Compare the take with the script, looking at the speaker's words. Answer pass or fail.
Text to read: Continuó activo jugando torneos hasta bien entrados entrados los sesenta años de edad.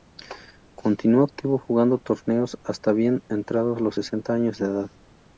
fail